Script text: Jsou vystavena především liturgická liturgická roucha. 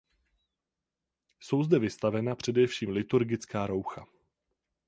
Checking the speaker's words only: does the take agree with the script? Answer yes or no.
no